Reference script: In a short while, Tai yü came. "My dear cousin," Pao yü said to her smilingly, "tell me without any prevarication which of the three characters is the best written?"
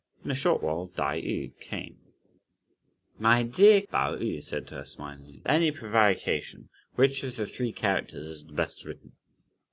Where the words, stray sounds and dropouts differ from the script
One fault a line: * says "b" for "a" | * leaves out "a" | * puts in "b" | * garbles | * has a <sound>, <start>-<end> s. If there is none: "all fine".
* leaves out "cousin"
* leaves out "tell me without"